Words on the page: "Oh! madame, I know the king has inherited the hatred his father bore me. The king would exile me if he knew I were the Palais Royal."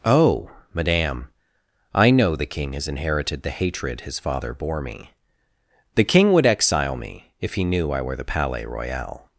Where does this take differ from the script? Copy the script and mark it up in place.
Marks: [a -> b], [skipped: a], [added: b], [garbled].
"Oh! madame, I know the king has inherited the hatred his father bore me. The king would exile me if he knew I were the Palais Royal."